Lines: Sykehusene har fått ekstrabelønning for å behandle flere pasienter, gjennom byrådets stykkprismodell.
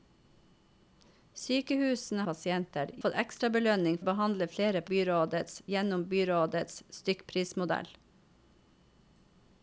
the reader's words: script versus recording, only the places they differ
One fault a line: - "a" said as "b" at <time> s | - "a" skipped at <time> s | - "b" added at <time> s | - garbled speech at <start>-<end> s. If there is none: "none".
- "har" said as "pasienter" at 2.3 s
- "for" skipped at 4.0 s
- "pasienter" said as "byrådets" at 4.9 s